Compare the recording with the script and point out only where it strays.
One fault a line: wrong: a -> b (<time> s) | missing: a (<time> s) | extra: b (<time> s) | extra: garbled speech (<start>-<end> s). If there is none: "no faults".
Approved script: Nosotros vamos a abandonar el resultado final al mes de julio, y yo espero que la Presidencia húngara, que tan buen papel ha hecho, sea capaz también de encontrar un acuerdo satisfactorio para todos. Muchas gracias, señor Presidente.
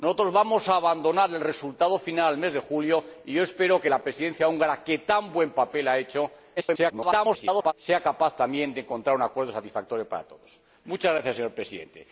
extra: garbled speech (6.6-7.7 s)